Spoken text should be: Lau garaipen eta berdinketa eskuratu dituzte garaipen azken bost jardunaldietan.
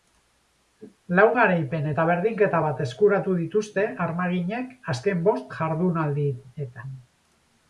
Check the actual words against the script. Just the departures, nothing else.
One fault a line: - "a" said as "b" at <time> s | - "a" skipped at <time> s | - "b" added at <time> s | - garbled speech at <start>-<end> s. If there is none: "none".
- "bat" added at 2.6 s
- "garaipen" said as "armaginek" at 4.1 s